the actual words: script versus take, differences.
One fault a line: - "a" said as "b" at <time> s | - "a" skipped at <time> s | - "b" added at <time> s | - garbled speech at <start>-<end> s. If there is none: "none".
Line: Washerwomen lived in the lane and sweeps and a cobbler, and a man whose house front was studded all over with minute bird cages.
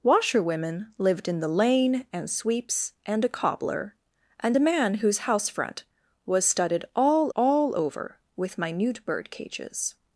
- "all" added at 7.4 s